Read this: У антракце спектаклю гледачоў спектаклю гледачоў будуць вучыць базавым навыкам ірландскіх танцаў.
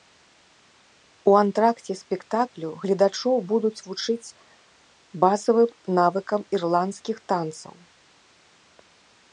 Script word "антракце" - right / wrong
right